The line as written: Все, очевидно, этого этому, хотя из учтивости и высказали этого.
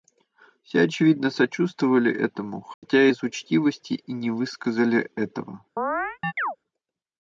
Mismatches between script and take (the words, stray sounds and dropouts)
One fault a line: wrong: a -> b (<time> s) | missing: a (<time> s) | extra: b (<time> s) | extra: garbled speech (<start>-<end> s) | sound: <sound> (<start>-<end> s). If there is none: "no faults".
wrong: этого -> сочувствовали (1.3 s)
sound: dropout (2.7-2.8 s)
extra: не (4.1 s)
sound: chirp (5.8-6.6 s)